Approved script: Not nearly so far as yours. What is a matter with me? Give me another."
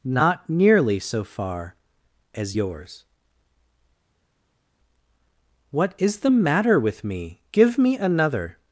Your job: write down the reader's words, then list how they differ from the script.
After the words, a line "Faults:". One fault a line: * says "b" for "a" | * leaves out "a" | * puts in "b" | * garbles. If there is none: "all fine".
Not nearly so far as yours. What is the matter with me? Give me another."
Faults:
* says "the" for "a"